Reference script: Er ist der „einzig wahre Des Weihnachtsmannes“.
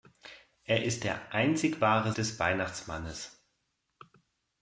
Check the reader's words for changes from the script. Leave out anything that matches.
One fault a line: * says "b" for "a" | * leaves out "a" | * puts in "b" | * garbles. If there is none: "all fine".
all fine